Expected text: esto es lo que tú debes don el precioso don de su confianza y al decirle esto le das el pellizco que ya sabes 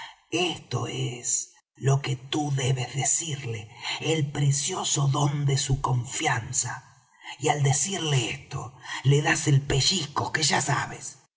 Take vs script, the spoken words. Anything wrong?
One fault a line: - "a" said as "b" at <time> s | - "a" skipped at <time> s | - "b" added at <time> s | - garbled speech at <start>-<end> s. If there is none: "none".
- "don" said as "decirle" at 2.9 s